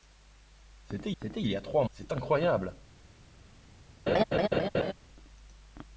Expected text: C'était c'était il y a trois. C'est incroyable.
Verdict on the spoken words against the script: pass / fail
pass